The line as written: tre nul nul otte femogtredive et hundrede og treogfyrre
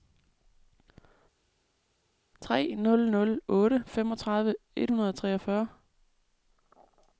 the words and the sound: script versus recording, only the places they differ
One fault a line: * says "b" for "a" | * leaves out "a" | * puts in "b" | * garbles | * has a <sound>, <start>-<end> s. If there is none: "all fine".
all fine